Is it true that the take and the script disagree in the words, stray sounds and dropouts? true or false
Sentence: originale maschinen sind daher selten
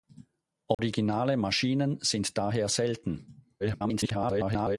true